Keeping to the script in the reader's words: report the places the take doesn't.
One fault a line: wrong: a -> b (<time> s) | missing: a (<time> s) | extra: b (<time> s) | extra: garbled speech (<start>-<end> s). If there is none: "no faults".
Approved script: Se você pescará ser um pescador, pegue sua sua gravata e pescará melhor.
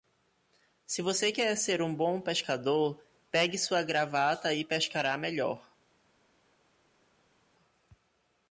wrong: pescará -> quer (1.3 s)
extra: bom (1.9 s)
missing: sua (3.8 s)